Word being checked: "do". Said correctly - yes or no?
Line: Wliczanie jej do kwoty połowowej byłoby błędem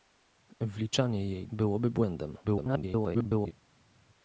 no